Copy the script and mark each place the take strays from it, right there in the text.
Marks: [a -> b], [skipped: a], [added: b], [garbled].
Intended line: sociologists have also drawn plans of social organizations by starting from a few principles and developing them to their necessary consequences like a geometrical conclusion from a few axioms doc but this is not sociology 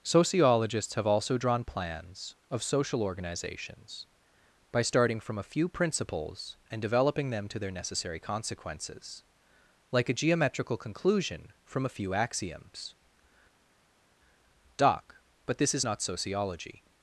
sociologists have also drawn plans of social organizations by starting from a few principles and developing them to their necessary consequences like a geometrical conclusion from a few axioms doc but this is not sociology